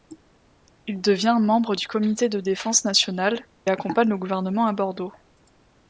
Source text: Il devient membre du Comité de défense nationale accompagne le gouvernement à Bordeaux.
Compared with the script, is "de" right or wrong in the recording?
right